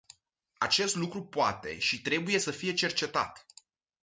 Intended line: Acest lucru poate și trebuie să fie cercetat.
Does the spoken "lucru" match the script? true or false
true